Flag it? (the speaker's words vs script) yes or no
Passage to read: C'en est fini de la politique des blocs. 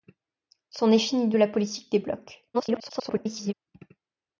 yes